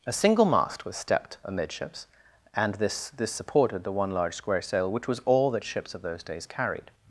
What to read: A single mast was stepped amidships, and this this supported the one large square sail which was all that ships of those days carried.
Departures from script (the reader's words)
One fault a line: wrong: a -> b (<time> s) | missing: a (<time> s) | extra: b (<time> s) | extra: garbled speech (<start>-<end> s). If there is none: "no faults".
no faults